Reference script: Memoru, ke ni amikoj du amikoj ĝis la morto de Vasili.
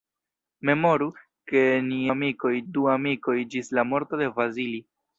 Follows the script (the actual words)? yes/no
yes